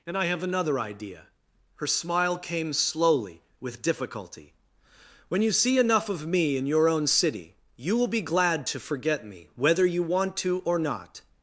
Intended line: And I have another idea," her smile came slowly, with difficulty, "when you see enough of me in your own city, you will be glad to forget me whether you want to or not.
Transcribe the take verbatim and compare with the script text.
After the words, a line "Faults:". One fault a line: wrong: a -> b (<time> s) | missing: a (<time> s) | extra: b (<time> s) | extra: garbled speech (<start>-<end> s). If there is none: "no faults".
And I have another idea," her smile came slowly, with difficulty, "when you see enough of me in your own city, you will be glad to forget me whether you want to or not.
Faults:
no faults